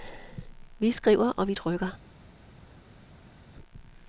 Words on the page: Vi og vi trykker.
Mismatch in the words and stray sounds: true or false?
true